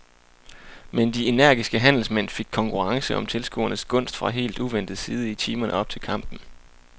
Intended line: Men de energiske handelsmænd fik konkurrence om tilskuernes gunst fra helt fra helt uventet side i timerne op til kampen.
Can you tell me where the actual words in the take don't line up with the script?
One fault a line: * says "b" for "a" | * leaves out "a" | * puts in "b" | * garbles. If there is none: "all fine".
* leaves out "fra helt"